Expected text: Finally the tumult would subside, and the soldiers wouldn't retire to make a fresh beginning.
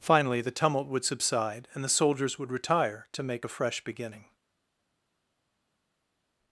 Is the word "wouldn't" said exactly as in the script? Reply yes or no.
no